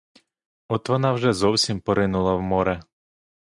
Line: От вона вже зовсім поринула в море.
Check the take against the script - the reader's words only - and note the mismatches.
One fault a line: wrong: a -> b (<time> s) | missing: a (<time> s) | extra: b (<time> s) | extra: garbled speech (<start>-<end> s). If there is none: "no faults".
no faults